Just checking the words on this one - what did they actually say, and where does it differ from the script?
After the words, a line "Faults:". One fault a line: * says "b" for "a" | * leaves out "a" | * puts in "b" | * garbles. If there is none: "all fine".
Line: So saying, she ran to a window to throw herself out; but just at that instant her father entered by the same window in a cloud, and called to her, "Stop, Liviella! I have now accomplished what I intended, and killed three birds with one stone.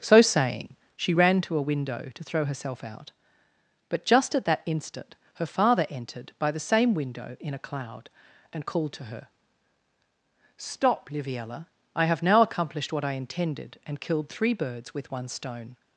So saying, she ran to a window to throw herself out; but just at that instant her father entered by the same window in a cloud, and called to her, "Stop, Liviella! I have now accomplished what I intended, and killed three birds with one stone.
Faults:
all fine